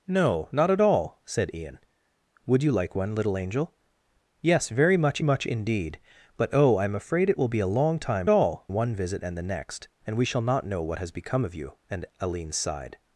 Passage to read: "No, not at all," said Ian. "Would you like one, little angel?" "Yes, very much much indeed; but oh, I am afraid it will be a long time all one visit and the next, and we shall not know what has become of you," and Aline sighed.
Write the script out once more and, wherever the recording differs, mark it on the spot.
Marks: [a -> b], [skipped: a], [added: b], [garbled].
"No, not at all," said Ian. "Would you like one, little angel?" "Yes, very much much indeed; but oh, I am afraid it will be a long time all one visit and the next, and we shall not know what has become of you," and Aline sighed.